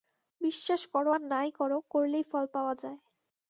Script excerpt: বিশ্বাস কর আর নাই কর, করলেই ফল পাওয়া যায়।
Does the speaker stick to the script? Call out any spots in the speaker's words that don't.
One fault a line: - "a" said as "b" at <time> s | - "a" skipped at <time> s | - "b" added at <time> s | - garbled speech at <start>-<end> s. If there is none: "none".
none